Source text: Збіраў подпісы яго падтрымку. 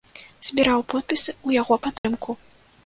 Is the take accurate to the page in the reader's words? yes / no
no